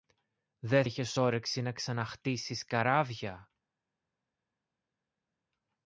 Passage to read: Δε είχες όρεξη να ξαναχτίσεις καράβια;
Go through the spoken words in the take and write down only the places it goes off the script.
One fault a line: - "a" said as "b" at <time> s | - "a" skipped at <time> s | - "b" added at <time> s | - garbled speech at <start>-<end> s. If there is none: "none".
none